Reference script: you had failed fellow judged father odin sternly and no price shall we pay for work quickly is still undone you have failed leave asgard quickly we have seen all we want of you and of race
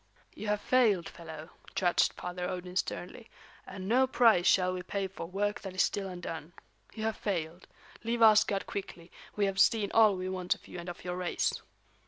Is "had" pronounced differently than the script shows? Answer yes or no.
yes